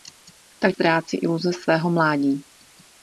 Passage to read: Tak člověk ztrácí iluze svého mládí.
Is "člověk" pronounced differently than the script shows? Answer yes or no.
yes